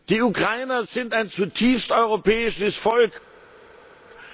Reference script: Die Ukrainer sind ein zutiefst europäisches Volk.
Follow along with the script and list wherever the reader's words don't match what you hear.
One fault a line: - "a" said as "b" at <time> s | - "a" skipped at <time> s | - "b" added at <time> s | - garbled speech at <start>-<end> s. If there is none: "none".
none